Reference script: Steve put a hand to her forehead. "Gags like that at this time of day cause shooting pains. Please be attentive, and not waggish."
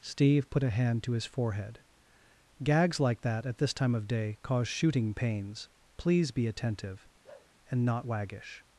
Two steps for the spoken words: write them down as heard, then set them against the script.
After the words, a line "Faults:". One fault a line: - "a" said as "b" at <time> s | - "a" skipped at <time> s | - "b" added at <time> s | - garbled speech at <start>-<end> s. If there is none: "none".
Steve put a hand to his forehead. "Gags like that at this time of day cause shooting pains. Please be attentive, and not waggish."
Faults:
- "her" said as "his" at 1.1 s